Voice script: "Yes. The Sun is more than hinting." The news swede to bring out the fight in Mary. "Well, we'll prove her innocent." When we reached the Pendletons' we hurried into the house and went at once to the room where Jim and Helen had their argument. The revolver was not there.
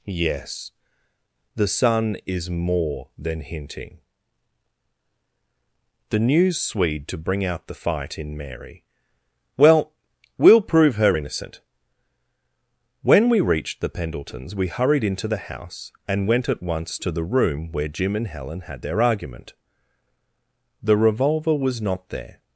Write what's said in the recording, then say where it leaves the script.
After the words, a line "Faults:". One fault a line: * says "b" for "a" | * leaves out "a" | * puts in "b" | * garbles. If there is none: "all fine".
"Yes. The Sun is more than hinting." The news swede to bring out the fight in Mary. "Well, we'll prove her innocent." When we reached the Pendletons' we hurried into the house and went at once to the room where Jim and Helen had their argument. The revolver was not there.
Faults:
all fine